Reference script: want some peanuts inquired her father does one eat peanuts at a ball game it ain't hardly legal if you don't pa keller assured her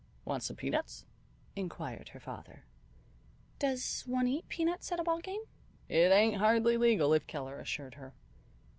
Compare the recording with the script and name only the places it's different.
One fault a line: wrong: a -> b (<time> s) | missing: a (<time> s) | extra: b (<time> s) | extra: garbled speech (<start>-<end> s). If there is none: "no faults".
missing: you don't pa (7.3 s)